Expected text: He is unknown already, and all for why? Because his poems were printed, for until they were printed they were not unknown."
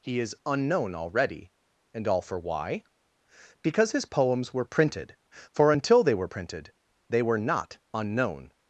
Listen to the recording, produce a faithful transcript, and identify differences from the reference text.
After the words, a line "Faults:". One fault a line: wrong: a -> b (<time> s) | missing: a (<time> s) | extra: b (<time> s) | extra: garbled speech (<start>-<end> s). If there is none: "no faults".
He is unknown already, and all for why? Because his poems were printed, for until they were printed they were not unknown."
Faults:
no faults